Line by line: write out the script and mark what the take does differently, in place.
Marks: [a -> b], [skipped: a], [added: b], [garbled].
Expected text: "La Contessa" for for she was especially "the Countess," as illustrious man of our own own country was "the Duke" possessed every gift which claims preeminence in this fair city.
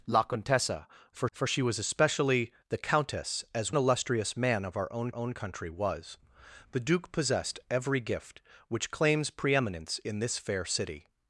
"La Contessa" for for she was especially "the Countess," as illustrious man of our own own country was "the Duke" possessed every gift which claims preeminence in this fair city.